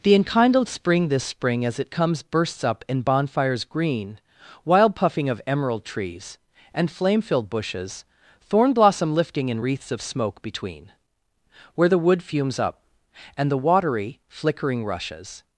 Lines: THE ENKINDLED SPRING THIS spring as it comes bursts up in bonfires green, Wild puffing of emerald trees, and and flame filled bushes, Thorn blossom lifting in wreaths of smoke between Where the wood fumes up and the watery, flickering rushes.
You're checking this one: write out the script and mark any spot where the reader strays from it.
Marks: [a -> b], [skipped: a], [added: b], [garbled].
THE ENKINDLED SPRING THIS spring as it comes bursts up in bonfires green, Wild puffing of emerald trees, and [skipped: and] flame filled bushes, Thorn blossom lifting in wreaths of smoke between Where the wood fumes up and the watery, flickering rushes.